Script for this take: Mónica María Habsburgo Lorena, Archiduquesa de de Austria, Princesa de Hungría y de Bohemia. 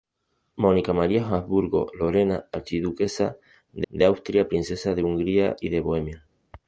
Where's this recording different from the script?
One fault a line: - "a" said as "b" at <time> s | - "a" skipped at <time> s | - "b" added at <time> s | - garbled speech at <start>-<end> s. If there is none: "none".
none